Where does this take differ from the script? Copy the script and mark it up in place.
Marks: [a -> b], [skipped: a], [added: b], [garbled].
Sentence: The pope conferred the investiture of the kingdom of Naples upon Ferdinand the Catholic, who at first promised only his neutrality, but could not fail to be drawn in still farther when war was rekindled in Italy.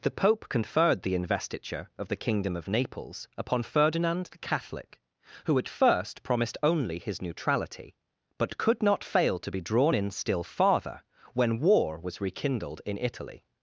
The pope conferred the investiture of the kingdom of Naples upon Ferdinand the Catholic, who at first promised only his neutrality, but could not fail to be drawn in still farther when war was rekindled in Italy.